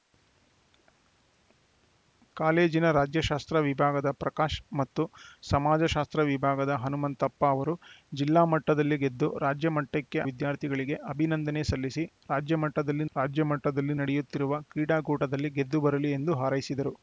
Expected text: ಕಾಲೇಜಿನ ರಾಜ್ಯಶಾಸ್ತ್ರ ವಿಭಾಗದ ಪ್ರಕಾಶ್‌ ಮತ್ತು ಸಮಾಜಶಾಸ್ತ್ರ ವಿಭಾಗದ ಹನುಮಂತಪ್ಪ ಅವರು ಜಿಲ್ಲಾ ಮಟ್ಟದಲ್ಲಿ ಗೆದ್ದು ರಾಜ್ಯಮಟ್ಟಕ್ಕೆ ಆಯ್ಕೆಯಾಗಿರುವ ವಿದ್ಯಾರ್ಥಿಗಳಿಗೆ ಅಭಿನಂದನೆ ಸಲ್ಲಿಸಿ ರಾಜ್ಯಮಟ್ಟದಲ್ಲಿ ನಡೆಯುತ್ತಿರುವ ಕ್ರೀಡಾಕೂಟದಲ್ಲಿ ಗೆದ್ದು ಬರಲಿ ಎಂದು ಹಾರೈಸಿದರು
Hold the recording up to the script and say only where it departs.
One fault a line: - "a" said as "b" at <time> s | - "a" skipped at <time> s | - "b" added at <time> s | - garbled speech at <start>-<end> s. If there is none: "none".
- "ಆಯ್ಕೆಯಾಗಿರುವ" skipped at 10.2 s
- "ರಾಜ್ಯಮಟ್ಟದಲ್ಲಿ" added at 13.2 s